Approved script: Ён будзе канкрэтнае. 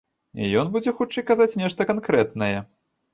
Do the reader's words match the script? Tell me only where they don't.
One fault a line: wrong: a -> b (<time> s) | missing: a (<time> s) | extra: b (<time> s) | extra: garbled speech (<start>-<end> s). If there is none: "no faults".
extra: хутчэй казаць нешта (1.0 s)